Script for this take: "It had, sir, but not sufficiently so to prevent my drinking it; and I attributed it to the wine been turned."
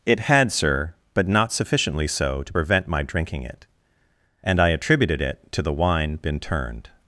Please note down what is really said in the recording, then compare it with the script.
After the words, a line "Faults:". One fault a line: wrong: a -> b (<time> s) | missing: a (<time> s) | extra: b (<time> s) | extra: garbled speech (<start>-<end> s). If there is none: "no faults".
"It had, sir, but not sufficiently so to prevent my drinking it; and I attributed it to the wine been turned."
Faults:
no faults